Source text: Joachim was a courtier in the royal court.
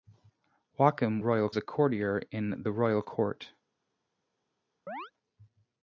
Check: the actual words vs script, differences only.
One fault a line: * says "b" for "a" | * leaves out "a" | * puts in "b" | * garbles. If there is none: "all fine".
* says "royal" for "was"